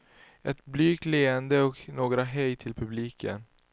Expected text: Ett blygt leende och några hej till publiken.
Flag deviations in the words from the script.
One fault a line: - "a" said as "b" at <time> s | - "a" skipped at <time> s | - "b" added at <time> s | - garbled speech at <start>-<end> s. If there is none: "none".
none